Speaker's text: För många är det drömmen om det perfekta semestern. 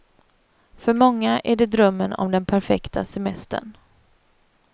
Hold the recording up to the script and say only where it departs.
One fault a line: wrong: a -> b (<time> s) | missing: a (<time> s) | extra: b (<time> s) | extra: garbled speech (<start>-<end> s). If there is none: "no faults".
wrong: det -> den (2.3 s)